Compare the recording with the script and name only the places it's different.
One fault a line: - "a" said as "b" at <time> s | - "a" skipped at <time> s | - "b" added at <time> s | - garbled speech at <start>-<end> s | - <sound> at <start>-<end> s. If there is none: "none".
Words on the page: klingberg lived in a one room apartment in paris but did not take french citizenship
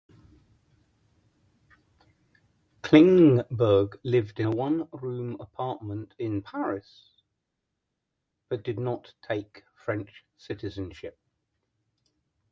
none